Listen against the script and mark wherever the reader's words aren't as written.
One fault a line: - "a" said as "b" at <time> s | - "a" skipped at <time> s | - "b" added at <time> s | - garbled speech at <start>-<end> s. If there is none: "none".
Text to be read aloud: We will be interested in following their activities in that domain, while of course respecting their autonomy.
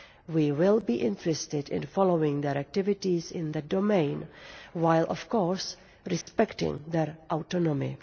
none